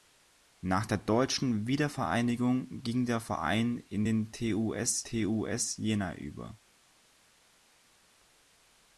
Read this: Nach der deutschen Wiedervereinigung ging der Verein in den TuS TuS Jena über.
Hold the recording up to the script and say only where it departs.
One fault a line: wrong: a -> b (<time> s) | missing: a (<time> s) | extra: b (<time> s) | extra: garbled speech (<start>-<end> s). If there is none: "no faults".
no faults